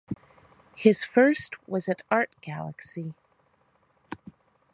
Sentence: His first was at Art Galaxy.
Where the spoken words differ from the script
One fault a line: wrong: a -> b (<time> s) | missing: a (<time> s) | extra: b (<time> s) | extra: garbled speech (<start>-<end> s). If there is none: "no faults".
no faults